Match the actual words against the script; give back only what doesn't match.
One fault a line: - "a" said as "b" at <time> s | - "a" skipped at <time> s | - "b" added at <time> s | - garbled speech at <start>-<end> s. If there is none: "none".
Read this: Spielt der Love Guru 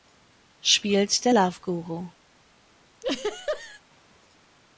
none